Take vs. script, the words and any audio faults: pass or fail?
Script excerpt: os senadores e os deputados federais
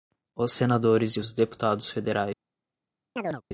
fail